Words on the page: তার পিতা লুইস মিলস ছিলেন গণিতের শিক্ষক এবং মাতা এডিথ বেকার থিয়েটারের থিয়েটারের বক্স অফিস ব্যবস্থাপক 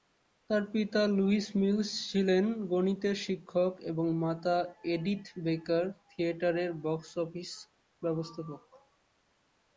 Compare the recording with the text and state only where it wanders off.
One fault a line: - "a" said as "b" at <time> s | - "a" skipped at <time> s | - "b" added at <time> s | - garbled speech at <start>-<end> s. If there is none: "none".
- "থিয়েটারের" skipped at 6.7 s